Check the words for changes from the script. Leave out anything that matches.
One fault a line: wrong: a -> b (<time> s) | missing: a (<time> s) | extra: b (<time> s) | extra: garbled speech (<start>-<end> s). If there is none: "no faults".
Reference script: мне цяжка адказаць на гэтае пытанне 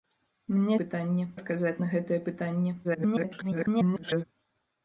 wrong: цяжка -> пытанне (0.8 s)
extra: garbled speech (2.8-4.2 s)